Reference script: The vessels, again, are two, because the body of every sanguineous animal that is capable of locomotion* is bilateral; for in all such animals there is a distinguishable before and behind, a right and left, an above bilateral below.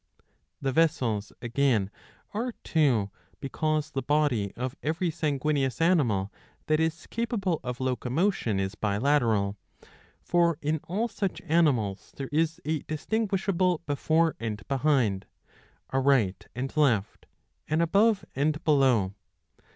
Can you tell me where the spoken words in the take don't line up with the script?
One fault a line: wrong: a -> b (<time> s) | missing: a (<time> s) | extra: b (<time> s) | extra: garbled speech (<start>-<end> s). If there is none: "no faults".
wrong: bilateral -> and (18.4 s)